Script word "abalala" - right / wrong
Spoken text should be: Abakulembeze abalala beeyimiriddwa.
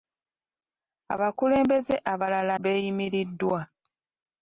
right